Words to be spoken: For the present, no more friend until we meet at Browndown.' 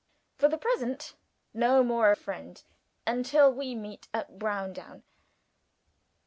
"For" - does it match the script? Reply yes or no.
yes